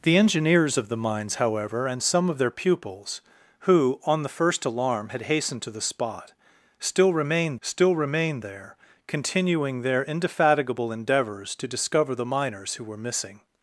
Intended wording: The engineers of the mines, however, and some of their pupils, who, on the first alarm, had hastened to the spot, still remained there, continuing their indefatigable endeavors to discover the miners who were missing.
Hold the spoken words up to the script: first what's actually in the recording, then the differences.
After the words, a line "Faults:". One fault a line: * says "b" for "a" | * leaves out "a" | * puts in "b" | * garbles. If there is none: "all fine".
The engineers of the mines, however, and some of their pupils, who, on the first alarm, had hastened to the spot, still remained still remained there, continuing their indefatigable endeavors to discover the miners who were missing.
Faults:
* puts in "still remained"